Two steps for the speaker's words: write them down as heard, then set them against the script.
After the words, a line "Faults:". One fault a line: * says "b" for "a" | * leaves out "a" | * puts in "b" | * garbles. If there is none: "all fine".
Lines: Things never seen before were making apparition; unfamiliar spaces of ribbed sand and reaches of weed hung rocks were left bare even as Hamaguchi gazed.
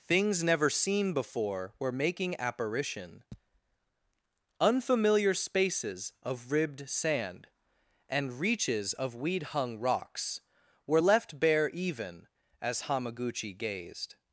Things never seen before were making apparition; unfamiliar spaces of ribbed sand and reaches of weed hung rocks were left bare even as Hamaguchi gazed.
Faults:
all fine